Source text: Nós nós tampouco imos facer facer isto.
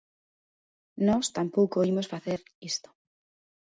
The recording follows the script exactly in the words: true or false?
false